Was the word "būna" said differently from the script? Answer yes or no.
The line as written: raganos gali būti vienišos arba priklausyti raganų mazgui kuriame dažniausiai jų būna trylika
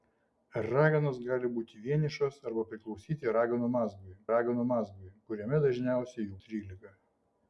yes